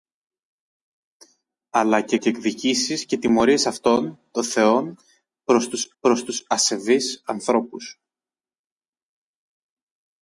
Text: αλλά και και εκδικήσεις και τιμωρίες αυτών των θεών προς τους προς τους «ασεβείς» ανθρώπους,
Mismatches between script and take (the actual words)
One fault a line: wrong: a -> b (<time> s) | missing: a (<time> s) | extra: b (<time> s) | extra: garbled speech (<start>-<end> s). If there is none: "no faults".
no faults